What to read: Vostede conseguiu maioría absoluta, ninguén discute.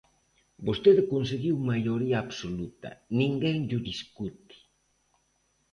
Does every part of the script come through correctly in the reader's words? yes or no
no